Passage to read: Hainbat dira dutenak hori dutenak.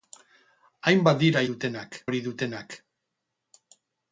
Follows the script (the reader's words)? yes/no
yes